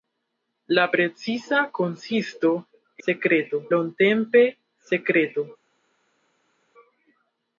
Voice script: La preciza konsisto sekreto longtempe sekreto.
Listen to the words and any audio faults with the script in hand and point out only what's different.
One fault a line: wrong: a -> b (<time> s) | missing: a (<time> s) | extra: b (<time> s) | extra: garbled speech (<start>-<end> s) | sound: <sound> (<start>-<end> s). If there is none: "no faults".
no faults